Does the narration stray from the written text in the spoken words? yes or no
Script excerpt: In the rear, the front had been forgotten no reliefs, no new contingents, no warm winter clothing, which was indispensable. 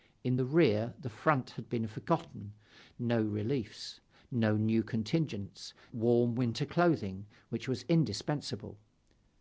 yes